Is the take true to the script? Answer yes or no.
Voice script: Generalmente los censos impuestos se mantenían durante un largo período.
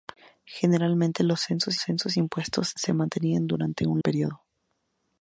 no